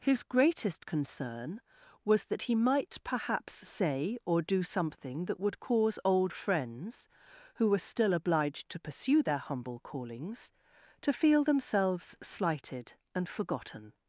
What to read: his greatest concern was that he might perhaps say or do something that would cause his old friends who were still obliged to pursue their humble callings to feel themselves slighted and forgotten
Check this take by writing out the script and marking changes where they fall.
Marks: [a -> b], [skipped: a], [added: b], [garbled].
his greatest concern was that he might perhaps say or do something that would cause [skipped: his] old friends who were still obliged to pursue their humble callings to feel themselves slighted and forgotten